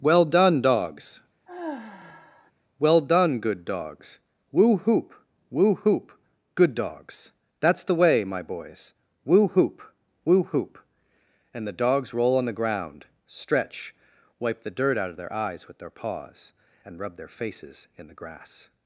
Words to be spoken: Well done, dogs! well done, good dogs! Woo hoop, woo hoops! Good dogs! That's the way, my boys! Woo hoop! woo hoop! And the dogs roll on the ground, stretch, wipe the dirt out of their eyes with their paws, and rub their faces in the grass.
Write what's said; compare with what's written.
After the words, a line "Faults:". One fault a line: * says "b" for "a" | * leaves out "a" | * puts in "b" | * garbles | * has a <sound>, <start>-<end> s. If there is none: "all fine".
Well done, dogs! well done, good dogs! Woo hoop, woo hoop! Good dogs! That's the way, my boys! Woo hoop! woo hoop! And the dogs roll on the ground, stretch, wipe the dirt out of their eyes with their paws, and rub their faces in the grass.
Faults:
* has a sigh, 1.5-2.5 s
* says "hoop" for "hoops"